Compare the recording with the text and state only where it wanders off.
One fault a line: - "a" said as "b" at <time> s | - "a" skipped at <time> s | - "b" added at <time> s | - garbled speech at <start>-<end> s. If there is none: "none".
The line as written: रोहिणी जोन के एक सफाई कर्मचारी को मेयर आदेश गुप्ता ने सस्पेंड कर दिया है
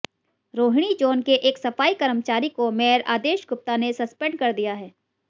none